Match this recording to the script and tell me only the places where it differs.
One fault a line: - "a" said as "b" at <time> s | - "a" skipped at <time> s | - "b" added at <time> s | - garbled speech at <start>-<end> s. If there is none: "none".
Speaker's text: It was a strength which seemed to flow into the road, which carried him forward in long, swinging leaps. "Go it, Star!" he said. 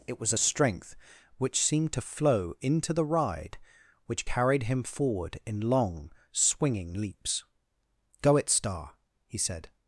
- "road" said as "ride" at 3.1 s